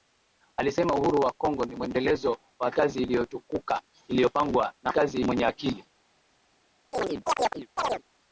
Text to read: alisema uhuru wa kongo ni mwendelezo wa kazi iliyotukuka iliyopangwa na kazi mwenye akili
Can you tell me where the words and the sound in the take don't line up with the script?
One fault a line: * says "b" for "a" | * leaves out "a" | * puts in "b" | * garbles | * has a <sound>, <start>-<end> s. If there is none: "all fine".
* has a chirp, 6.9-8.0 s